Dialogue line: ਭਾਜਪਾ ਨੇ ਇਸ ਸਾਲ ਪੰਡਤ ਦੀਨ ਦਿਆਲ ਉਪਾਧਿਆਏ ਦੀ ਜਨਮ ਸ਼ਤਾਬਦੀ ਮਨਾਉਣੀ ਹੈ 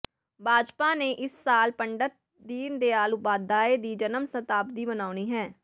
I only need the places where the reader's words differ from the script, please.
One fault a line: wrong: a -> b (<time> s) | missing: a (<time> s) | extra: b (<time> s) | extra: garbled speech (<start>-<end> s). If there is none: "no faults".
no faults